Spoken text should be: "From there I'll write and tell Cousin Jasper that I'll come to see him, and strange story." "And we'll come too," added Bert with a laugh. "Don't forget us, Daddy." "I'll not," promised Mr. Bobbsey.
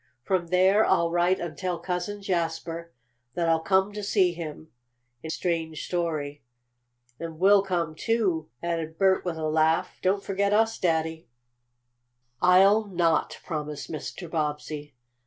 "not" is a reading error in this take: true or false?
false